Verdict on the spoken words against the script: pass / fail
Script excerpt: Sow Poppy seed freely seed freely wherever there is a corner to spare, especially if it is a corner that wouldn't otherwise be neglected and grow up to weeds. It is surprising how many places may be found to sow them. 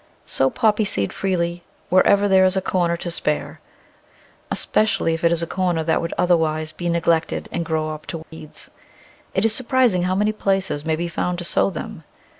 fail